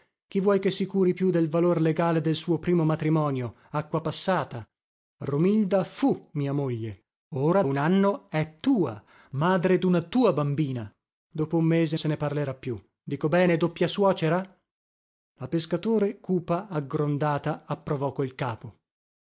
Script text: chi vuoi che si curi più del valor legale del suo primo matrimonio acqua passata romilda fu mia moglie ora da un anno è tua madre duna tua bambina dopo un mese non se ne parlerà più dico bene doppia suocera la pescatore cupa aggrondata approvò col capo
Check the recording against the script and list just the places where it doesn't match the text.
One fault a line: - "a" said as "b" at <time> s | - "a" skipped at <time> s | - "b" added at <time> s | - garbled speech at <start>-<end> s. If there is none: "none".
- "da" skipped at 7.6 s
- "non" skipped at 12.0 s